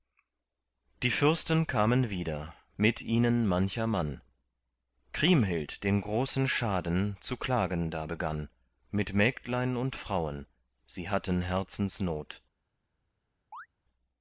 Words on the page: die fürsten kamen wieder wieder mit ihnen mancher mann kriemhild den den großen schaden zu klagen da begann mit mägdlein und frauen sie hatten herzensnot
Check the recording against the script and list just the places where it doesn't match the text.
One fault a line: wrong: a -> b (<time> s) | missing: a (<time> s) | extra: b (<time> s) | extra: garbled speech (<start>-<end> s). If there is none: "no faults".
missing: wieder (2.5 s)
missing: den (6.0 s)